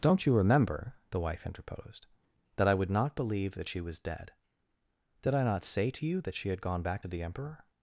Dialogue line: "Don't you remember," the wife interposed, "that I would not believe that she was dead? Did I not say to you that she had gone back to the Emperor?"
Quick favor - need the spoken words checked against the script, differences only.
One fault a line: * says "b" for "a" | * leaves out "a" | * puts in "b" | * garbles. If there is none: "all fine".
all fine